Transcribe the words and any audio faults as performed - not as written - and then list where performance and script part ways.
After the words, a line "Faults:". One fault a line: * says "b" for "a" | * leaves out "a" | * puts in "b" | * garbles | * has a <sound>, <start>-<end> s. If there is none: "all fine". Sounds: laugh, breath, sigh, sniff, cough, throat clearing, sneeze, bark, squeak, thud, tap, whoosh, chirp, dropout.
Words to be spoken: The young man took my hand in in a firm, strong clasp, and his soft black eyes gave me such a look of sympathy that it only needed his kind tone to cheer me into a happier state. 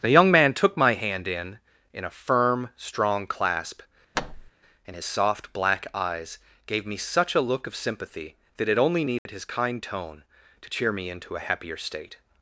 The young man took my hand in in a firm, strong clasp, and his soft black eyes gave me such a look of sympathy that it only needed his kind tone to cheer me into a happier state.
Faults:
* has a thud, 4.1-4.5 s
* has a dropout, 9.2-9.3 s